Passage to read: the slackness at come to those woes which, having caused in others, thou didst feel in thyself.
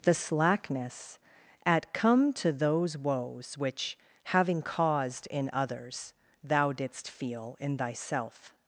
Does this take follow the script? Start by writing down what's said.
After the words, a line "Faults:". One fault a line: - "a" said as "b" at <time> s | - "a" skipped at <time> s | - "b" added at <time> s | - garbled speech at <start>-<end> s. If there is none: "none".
the slackness at come to those woes which, having caused in others, thou didst feel in thyself.
Faults:
none